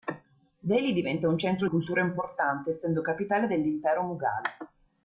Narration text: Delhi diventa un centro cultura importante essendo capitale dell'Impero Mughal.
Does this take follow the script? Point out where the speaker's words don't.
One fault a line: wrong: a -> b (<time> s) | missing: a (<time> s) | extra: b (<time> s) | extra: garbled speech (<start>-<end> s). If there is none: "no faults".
no faults